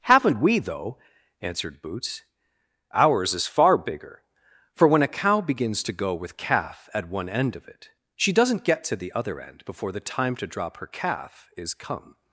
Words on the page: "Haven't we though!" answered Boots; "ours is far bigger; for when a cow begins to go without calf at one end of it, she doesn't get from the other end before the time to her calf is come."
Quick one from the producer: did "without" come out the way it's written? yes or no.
no